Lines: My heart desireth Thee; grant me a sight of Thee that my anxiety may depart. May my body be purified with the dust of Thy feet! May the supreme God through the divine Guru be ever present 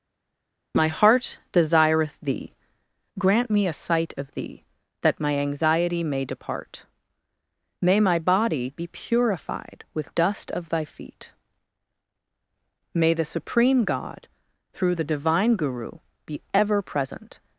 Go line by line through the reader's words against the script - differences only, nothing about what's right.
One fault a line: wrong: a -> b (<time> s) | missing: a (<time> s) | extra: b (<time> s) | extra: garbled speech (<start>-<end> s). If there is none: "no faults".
missing: the (10.1 s)